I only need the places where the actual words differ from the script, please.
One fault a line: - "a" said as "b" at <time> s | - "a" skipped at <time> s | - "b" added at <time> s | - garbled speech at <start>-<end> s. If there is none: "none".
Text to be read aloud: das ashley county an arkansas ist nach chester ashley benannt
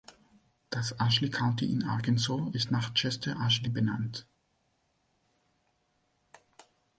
- "an" said as "in" at 1.7 s